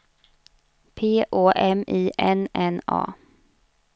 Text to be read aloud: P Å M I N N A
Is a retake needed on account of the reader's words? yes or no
no